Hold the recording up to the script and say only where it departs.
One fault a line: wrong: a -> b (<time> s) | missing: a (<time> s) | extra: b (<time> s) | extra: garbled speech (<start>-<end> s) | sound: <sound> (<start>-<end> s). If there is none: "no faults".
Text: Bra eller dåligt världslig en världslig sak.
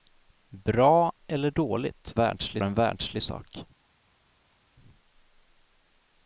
no faults